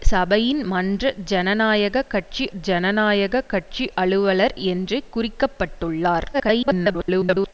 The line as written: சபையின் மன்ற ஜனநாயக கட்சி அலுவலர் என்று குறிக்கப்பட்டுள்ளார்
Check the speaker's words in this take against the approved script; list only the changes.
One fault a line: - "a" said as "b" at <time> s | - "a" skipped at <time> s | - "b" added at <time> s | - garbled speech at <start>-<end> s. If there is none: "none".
- "ஜனநாயக கட்சி" added at 2.6 s
- garbled speech at 6.3-7.5 s